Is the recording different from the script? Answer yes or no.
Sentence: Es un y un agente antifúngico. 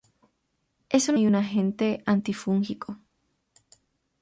no